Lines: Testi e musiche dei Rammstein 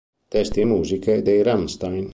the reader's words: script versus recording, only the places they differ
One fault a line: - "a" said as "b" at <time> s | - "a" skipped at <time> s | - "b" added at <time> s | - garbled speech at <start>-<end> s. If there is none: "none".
none